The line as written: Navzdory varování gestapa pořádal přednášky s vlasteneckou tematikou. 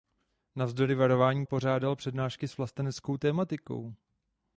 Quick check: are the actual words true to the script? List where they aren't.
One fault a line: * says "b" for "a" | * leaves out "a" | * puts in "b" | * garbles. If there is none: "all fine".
* leaves out "gestapa"